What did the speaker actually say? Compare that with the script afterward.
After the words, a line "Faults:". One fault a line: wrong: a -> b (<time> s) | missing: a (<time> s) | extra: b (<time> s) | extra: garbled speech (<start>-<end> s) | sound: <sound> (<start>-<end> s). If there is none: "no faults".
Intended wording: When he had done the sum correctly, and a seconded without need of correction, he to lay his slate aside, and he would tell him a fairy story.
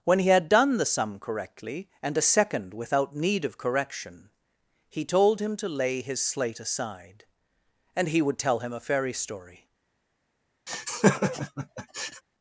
When he had done the sum correctly, and a second without need of correction, he told him to lay his slate aside, and he would tell him a fairy story.
Faults:
wrong: seconded -> second (2.2 s)
extra: told him (5.0 s)
sound: laugh (10.7-12.2 s)